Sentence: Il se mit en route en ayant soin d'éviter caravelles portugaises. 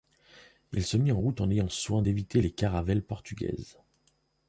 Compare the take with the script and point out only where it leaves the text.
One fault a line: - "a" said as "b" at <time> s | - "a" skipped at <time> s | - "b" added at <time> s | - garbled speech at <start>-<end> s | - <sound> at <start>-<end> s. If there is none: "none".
- "les" added at 2.4 s